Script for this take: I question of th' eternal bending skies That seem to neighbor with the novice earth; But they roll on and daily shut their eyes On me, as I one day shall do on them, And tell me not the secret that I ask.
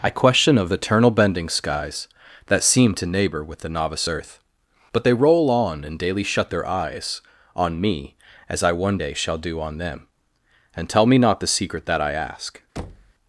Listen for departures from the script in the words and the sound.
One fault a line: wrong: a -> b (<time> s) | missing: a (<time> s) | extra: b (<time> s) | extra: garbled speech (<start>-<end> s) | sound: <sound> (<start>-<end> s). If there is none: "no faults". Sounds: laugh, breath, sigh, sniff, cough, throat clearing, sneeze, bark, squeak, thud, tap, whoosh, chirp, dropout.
missing: th (0.7 s)
sound: thud (12.8-13.1 s)